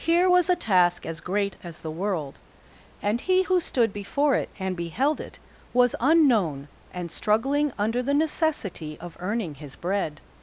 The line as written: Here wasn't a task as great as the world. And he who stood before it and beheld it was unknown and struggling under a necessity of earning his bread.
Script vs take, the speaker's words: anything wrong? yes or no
yes